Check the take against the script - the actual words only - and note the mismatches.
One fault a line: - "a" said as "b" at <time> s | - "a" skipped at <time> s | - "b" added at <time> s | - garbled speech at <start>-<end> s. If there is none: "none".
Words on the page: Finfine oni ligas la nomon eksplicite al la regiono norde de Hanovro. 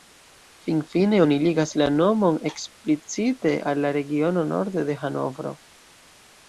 none